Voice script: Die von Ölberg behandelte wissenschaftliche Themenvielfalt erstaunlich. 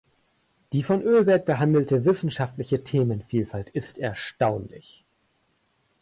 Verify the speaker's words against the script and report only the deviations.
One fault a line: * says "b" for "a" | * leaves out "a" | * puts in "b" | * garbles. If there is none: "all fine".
* puts in "ist"